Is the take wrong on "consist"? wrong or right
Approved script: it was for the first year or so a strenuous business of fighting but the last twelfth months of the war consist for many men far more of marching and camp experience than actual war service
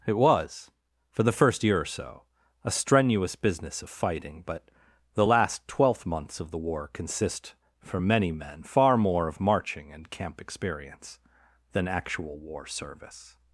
right